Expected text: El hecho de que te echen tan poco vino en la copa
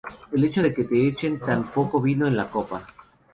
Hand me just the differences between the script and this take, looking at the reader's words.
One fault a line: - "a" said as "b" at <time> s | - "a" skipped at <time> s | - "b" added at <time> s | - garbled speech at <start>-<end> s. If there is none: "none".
none